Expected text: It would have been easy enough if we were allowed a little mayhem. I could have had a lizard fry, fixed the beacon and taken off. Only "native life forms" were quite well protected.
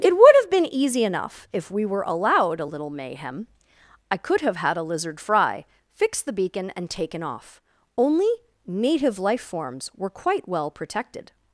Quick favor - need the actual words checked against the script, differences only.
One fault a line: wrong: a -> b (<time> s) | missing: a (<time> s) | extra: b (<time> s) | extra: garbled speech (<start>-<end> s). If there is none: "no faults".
no faults